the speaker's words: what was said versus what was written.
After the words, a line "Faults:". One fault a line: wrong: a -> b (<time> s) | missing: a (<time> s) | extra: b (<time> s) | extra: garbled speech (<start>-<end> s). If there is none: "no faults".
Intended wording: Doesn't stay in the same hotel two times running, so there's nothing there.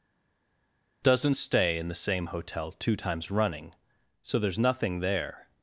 Doesn't stay in the same hotel two times running, so there's nothing there.
Faults:
no faults